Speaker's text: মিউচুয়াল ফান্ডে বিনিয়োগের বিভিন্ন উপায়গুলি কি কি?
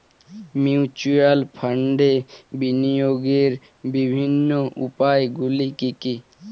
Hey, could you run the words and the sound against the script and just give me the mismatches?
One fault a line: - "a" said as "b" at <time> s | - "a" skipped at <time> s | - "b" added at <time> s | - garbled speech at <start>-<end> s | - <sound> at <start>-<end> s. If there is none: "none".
none